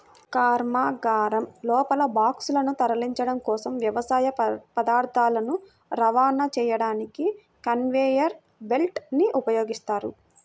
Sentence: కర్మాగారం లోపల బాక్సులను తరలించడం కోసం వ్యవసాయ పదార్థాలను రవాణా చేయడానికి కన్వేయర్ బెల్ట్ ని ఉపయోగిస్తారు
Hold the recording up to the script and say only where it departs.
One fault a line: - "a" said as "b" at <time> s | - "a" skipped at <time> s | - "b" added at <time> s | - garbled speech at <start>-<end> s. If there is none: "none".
none